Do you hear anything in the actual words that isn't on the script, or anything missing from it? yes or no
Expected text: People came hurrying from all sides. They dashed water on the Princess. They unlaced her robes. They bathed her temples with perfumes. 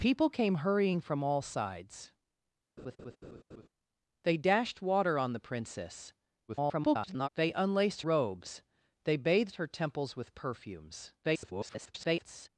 yes